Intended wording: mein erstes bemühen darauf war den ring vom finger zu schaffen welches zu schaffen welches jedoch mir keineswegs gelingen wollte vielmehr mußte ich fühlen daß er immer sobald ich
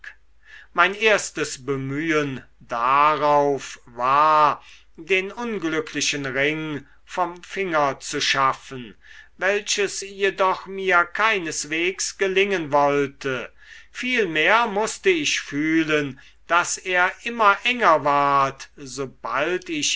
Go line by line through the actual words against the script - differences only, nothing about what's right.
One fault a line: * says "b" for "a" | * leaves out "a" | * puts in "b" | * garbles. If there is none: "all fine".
* puts in "unglücklichen"
* leaves out "zu schaffen welches"
* puts in "enger ward"